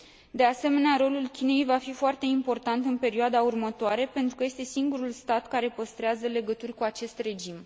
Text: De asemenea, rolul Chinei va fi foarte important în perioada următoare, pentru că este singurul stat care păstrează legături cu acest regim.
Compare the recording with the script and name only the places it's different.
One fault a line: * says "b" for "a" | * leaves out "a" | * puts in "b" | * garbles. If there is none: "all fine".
all fine